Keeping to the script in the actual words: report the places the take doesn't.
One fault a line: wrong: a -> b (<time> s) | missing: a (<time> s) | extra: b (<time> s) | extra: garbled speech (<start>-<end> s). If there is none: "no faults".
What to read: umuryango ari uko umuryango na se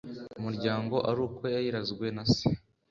wrong: umuryango -> yayirazwe (1.5 s)